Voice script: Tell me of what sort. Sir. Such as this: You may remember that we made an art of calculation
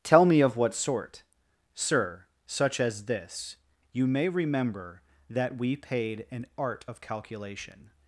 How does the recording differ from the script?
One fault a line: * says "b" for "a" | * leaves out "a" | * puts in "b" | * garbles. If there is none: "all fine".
* says "paid" for "made"